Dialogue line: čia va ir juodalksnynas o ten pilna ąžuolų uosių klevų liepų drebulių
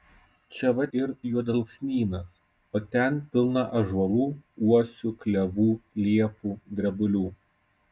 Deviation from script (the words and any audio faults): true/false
false